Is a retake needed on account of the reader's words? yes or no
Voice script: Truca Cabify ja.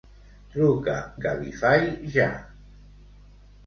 no